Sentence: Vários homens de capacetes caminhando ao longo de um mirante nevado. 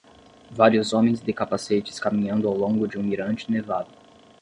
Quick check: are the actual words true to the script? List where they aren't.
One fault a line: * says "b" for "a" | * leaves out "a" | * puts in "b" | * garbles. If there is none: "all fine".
all fine